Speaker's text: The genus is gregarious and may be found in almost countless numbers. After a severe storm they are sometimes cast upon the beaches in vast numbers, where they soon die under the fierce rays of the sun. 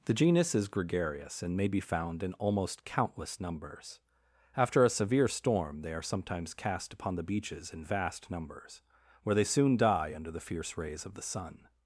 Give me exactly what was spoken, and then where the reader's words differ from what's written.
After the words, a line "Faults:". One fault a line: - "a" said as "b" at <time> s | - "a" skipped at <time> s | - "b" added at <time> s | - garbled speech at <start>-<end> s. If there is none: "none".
The genus is gregarious and may be found in almost countless numbers. After a severe storm they are sometimes cast upon the beaches in vast numbers, where they soon die under the fierce rays of the sun.
Faults:
none